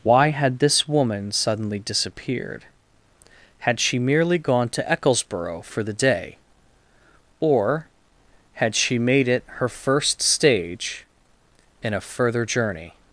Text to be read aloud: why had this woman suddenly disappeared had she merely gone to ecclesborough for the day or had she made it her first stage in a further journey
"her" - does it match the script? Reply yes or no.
yes